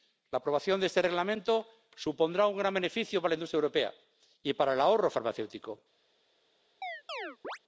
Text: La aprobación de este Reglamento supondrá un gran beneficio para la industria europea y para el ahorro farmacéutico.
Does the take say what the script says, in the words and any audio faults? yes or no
no